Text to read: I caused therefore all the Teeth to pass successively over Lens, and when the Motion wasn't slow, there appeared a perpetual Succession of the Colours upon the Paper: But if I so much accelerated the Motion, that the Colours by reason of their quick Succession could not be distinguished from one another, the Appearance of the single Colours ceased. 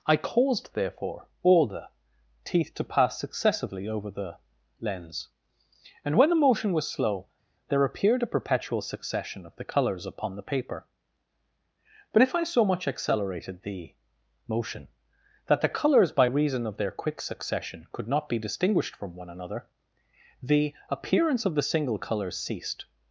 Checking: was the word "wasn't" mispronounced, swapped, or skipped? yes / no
yes